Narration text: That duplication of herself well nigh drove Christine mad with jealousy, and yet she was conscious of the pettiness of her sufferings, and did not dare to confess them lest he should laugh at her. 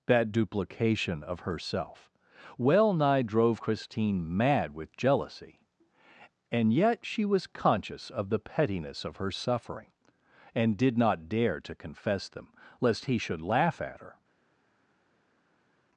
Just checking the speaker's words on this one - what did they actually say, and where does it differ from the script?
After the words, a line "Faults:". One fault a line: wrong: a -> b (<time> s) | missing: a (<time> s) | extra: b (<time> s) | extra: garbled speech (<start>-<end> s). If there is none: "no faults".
That duplication of herself well nigh drove Christine mad with jealousy, and yet she was conscious of the pettiness of her suffering, and did not dare to confess them lest he should laugh at her.
Faults:
wrong: sufferings -> suffering (9.3 s)